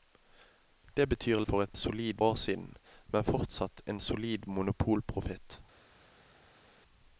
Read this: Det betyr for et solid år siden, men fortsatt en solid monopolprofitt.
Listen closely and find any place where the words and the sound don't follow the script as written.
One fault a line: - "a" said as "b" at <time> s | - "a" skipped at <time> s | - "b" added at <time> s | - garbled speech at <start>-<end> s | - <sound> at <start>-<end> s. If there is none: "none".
none